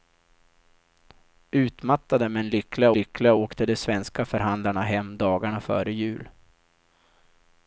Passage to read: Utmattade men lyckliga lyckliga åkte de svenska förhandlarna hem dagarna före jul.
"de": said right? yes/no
yes